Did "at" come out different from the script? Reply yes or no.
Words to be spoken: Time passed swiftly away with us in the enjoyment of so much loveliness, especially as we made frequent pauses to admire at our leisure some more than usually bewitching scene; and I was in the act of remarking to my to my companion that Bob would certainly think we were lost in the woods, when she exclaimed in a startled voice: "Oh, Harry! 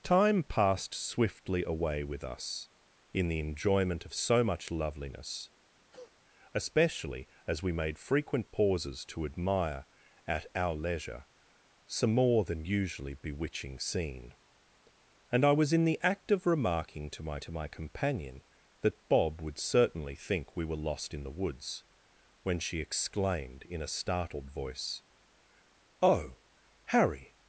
no